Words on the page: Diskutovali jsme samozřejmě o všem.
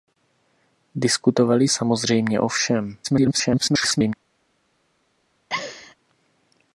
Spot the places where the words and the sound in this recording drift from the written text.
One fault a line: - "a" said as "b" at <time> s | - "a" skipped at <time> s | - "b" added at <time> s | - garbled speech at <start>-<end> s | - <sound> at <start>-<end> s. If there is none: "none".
- "jsme" skipped at 1.7 s
- garbled speech at 3.0-4.1 s
- laugh at 5.5-6.0 s